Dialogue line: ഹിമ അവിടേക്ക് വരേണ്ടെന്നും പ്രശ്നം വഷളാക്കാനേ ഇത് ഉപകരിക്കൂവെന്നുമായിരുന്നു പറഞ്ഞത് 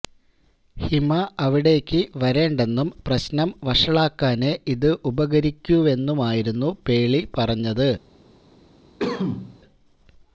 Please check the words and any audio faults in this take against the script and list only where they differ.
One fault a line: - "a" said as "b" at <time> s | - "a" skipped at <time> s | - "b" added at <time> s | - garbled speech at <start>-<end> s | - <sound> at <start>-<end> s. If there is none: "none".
- "പേളി" added at 6.9 s
- cough at 9.0-9.6 s